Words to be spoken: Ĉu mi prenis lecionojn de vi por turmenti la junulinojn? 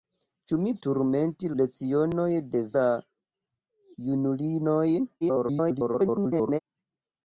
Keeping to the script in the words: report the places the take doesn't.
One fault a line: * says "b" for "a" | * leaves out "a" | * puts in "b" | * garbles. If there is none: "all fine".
* says "turmenti" for "prenis"
* leaves out "vi por turmenti"
* garbles